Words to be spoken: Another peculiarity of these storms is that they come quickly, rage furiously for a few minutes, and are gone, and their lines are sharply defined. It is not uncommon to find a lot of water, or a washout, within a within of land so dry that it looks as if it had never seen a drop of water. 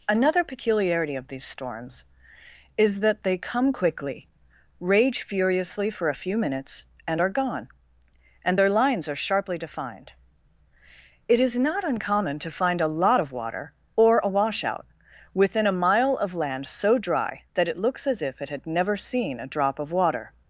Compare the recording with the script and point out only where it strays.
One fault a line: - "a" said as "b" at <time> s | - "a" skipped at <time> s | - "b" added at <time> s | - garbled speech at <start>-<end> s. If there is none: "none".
- "within" said as "mile" at 15.8 s